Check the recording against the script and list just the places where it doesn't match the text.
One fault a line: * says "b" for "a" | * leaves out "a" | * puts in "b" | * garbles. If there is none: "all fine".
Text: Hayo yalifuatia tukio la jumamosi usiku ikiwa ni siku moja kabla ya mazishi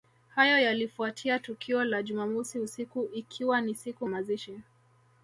* leaves out "moja kabla ya"